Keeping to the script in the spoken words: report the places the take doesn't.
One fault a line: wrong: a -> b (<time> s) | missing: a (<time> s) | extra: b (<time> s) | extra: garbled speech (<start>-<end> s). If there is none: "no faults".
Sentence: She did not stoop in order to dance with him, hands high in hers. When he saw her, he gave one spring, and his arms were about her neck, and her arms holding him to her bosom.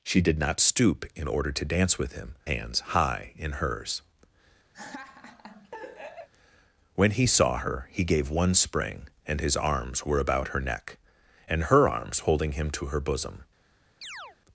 no faults